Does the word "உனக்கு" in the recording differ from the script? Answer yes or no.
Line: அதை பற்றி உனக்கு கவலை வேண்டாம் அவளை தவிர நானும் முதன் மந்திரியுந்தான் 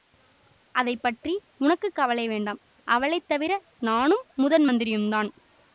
no